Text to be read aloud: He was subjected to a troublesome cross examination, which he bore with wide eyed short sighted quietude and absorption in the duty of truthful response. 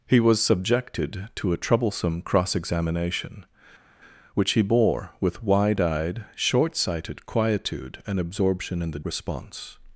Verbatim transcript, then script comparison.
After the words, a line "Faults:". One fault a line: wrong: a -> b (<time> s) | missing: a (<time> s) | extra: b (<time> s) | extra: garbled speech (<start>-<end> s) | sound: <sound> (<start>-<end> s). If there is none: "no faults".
He was subjected to a troublesome cross examination, which he bore with wide eyed short sighted quietude and absorption in the response.
Faults:
missing: duty of truthful (9.0 s)